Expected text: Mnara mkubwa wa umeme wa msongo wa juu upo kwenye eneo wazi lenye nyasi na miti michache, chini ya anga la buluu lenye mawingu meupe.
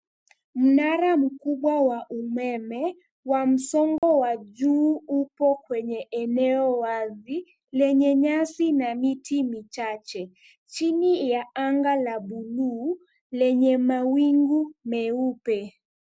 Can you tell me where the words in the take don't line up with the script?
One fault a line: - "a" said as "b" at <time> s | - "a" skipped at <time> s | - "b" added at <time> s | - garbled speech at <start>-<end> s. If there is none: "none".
none